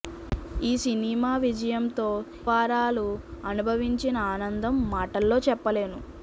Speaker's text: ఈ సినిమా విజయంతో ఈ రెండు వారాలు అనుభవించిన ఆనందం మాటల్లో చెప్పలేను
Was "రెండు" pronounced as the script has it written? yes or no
no